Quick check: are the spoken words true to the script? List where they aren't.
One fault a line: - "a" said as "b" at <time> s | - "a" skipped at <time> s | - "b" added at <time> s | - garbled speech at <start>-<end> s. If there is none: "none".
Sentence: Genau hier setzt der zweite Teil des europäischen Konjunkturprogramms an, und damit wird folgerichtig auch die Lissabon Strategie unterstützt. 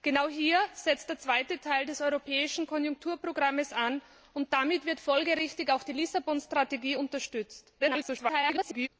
- garbled speech at 7.8-8.9 s